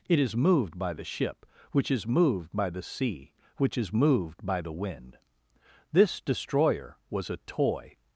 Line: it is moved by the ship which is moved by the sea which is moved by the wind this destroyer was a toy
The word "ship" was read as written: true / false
true